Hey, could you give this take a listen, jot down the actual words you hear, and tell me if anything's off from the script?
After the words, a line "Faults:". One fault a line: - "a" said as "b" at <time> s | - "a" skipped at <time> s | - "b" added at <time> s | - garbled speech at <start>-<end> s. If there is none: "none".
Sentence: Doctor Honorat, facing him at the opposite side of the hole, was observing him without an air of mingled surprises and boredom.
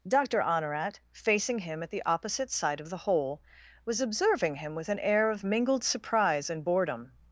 Doctor Honorat, facing him at the opposite side of the hole, was observing him with an air of mingled surprise and boredom.
Faults:
- "without" said as "with" at 4.7 s
- "surprises" said as "surprise" at 5.8 s